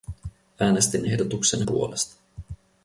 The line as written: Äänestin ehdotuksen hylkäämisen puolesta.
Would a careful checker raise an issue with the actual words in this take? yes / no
yes